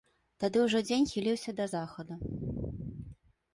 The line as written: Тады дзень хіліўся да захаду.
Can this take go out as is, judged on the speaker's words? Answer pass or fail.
fail